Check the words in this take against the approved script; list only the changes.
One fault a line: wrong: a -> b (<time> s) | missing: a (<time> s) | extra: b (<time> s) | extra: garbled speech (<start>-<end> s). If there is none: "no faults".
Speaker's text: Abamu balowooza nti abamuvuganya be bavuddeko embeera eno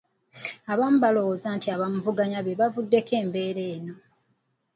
no faults